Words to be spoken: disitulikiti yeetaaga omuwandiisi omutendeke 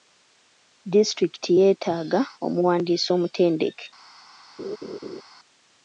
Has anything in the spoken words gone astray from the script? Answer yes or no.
no